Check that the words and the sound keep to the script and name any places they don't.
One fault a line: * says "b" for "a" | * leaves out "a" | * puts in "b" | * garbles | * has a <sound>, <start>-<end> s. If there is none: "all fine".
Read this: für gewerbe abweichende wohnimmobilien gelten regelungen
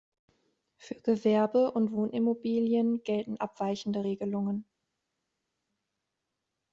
* says "und" for "abweichende"
* puts in "abweichende"